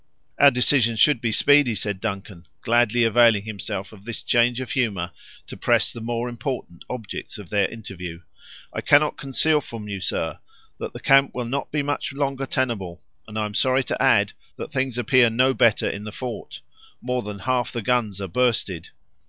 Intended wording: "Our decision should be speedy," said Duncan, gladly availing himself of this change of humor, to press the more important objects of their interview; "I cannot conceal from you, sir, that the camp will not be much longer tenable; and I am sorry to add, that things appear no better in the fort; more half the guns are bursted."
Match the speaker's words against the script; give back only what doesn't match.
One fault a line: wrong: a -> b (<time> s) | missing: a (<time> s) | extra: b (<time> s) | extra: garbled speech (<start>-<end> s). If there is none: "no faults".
extra: than (17.2 s)